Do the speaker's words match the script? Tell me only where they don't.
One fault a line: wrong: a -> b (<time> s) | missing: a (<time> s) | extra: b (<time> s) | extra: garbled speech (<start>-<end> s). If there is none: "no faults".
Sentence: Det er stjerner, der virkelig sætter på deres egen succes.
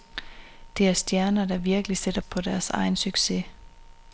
no faults